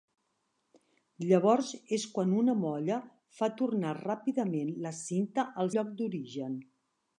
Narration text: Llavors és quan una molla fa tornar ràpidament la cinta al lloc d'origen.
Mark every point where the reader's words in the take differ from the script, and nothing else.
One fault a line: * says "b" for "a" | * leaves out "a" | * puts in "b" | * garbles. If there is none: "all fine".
all fine